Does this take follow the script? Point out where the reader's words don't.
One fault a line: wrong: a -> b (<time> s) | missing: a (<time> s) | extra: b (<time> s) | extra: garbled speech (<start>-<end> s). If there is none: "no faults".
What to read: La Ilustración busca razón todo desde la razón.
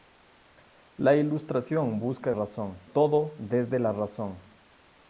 no faults